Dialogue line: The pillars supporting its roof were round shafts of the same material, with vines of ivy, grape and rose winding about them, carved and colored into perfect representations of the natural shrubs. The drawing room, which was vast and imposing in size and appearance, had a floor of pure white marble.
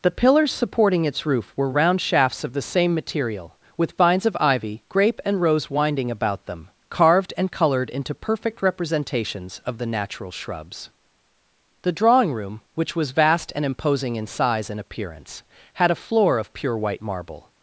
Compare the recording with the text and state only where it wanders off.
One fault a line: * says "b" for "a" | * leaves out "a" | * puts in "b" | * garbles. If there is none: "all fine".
all fine